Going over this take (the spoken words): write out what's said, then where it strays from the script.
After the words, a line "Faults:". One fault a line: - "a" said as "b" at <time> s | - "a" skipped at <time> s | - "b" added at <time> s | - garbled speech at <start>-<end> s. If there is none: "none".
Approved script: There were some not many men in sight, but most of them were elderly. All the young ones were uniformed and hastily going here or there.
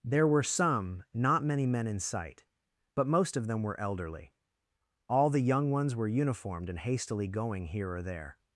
There were some not many men in sight, but most of them were elderly. All the young ones were uniformed and hastily going here or there.
Faults:
none